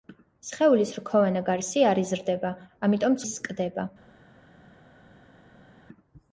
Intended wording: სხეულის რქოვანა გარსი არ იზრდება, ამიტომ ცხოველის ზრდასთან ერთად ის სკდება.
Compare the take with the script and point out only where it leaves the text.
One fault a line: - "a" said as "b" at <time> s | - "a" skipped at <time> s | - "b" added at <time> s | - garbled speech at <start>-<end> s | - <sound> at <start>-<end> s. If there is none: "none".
- "ცხოველის ზრდასთან ერთად" skipped at 3.2 s